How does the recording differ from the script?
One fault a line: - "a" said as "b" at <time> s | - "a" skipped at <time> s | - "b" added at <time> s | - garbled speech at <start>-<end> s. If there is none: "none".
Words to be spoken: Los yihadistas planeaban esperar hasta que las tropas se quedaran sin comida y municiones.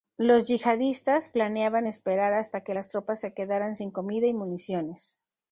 none